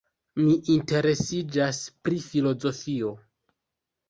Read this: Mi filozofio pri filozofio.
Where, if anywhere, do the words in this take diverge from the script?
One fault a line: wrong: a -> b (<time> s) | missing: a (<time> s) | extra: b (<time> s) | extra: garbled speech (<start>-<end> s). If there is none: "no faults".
wrong: filozofio -> interesiĝas (0.8 s)